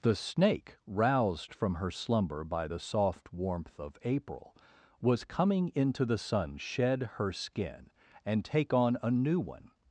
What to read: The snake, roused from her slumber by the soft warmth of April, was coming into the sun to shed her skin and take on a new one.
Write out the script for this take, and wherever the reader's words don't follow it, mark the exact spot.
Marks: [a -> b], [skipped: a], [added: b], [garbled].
The snake, roused from her slumber by the soft warmth of April, was coming into the sun [skipped: to] shed her skin and take on a new one.